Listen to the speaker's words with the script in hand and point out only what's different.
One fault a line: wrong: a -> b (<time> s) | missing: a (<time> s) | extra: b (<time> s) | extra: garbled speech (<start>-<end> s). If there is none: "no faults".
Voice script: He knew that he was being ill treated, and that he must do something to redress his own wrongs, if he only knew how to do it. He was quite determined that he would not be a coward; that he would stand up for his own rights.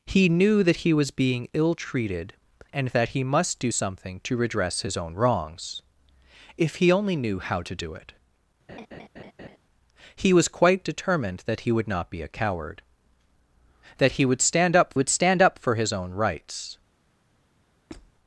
extra: would stand up (14.9 s)